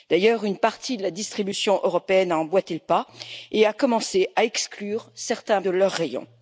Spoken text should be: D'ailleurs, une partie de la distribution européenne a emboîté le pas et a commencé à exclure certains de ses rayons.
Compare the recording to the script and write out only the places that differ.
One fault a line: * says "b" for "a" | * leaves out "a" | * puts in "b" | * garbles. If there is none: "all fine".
all fine